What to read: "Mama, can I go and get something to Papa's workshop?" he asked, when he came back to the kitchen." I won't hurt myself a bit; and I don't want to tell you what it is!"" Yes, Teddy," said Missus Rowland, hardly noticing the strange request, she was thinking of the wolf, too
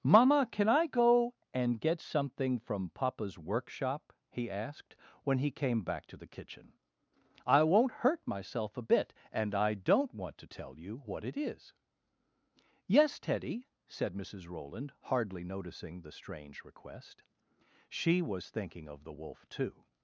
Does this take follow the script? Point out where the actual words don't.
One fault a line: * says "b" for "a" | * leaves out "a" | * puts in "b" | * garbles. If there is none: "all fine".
* says "from" for "to"